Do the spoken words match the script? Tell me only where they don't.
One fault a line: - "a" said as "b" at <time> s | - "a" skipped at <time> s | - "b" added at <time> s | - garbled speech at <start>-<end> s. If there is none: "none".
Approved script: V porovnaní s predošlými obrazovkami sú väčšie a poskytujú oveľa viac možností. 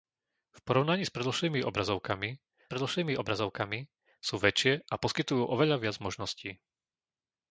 - "predošlými obrazovkami" added at 2.7 s